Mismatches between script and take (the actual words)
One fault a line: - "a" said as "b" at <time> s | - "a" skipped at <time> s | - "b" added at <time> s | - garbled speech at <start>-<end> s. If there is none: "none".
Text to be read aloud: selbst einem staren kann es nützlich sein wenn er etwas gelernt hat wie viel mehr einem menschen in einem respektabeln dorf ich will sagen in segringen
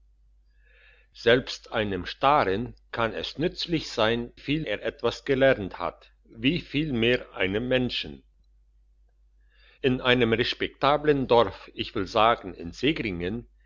- "wenn" said as "viel" at 4.3 s